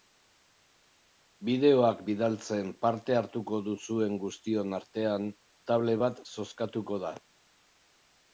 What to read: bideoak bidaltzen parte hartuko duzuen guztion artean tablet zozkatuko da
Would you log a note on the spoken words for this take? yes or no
yes